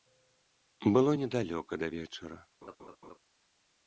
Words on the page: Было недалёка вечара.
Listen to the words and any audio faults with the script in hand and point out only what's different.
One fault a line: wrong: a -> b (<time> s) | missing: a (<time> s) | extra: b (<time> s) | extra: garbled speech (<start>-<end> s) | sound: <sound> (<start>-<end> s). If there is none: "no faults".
extra: да (1.7 s)
sound: laugh (2.6-3.2 s)